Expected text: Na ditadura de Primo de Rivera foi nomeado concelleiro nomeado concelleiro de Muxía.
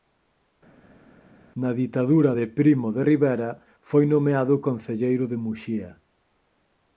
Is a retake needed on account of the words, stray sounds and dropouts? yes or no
yes